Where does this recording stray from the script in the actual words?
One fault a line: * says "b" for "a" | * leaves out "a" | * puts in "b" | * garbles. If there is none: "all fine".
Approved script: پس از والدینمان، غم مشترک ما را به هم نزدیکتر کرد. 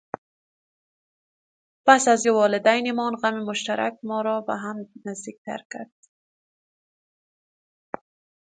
all fine